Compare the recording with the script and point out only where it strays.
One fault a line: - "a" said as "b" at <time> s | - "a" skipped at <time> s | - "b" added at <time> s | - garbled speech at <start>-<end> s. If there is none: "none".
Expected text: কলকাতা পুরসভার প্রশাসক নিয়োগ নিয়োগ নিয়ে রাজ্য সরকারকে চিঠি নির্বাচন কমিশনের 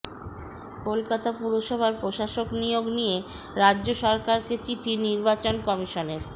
- "নিয়োগ" skipped at 2.9 s